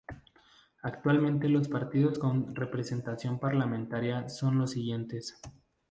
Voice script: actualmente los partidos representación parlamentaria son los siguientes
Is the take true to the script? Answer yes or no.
no